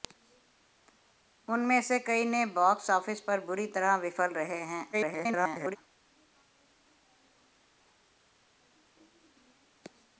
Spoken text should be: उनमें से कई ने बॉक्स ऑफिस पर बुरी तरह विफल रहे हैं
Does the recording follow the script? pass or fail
fail